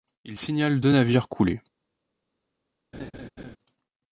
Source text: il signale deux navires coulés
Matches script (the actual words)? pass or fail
pass